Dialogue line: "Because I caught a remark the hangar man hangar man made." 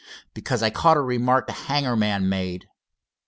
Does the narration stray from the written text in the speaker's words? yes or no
yes